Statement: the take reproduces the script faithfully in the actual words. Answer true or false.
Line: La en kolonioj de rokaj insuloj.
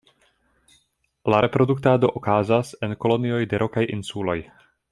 false